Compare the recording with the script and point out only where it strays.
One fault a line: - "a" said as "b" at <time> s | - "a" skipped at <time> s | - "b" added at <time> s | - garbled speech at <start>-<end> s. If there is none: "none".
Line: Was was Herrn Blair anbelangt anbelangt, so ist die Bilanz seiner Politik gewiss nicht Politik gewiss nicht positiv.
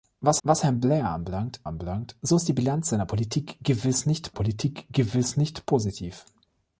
none